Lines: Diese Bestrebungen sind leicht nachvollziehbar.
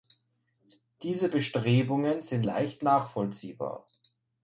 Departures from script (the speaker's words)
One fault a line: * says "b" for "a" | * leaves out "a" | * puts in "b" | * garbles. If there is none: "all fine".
all fine